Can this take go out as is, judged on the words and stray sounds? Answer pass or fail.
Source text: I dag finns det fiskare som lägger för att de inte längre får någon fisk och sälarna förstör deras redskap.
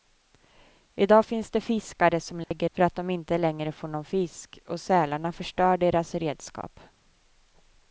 fail